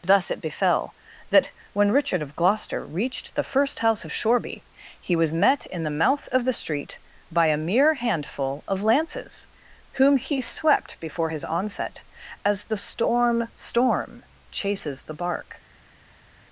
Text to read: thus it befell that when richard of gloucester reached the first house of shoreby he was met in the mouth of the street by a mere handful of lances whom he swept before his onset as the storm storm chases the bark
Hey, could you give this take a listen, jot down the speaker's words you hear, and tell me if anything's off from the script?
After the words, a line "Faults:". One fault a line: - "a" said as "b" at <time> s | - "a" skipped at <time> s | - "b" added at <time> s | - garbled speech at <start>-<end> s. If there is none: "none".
thus it befell that when richard of gloucester reached the first house of shoreby he was met in the mouth of the street by a mere handful of lances whom he swept before his onset as the storm storm chases the bark
Faults:
none